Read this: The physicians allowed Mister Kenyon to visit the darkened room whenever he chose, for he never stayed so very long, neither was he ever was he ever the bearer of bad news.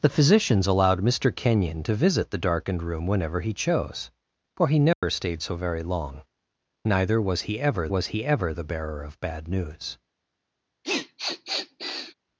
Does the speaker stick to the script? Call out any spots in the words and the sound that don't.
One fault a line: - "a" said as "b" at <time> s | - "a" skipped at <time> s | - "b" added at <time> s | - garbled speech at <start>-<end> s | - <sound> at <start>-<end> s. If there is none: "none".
- dropout at 4.9-5.0 s
- sniff at 10.8-12.1 s